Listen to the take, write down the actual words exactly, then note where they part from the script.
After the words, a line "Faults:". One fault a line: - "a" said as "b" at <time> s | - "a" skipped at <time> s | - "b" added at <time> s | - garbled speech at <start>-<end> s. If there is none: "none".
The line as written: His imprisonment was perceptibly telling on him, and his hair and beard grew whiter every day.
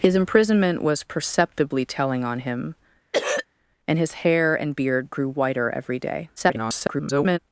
His imprisonment was perceptibly telling on him, and his hair and beard grew whiter every day. [garbled]
Faults:
- garbled speech at 6.4-7.4 s